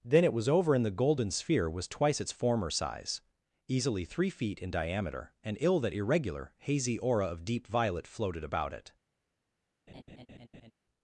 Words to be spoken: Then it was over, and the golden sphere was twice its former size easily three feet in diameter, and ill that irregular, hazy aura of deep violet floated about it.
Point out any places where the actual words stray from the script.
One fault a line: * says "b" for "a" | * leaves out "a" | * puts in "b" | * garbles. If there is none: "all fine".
all fine